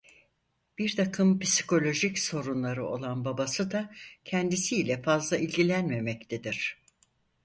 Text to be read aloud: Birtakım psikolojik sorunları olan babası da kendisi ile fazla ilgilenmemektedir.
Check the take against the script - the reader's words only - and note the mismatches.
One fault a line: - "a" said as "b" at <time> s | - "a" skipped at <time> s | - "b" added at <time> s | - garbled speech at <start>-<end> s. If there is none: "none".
none